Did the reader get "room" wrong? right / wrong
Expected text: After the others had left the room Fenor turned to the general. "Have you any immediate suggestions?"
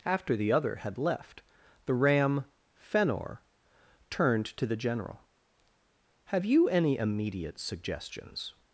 wrong